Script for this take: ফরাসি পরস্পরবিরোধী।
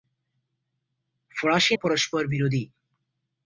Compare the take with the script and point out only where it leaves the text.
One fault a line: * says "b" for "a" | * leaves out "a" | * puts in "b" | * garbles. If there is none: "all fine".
all fine